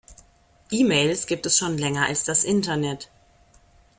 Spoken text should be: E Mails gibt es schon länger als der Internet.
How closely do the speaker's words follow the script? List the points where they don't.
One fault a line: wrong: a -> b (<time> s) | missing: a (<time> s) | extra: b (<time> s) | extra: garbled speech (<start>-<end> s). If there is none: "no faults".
wrong: der -> das (2.2 s)